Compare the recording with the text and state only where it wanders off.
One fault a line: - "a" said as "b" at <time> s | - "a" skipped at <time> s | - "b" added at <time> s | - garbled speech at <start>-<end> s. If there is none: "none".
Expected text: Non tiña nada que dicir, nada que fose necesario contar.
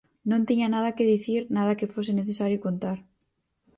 none